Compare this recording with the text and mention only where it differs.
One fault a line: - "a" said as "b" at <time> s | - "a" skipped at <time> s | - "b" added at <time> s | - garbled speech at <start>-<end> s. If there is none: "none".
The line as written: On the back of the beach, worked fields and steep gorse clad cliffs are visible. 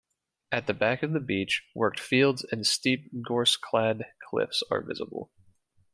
- "On" said as "At" at 0.5 s